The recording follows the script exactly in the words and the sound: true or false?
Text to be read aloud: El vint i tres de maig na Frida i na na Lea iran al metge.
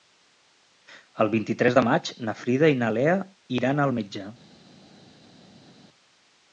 false